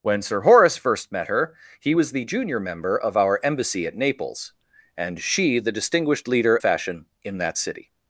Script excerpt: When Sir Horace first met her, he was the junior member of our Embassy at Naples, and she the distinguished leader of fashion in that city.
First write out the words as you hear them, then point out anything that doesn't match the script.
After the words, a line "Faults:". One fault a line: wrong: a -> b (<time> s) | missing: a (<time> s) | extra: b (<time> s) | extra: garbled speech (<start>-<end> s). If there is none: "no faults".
When Sir Horace first met her, he was the junior member of our Embassy at Naples, and she the distinguished leader fashion in that city.
Faults:
missing: of (6.6 s)